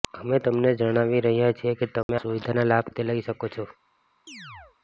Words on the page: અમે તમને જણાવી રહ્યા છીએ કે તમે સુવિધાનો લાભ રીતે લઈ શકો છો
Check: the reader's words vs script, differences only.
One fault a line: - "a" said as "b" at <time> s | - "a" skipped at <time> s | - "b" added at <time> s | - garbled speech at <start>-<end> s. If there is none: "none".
none